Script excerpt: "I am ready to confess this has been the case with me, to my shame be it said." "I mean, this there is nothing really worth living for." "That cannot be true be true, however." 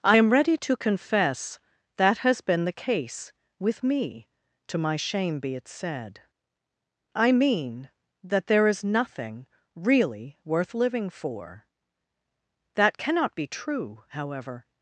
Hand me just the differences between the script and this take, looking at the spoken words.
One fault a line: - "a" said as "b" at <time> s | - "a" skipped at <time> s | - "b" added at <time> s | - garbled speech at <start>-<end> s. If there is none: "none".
- "this" said as "that" at 2.0 s
- "this" said as "that" at 8.2 s
- "be true" skipped at 14.0 s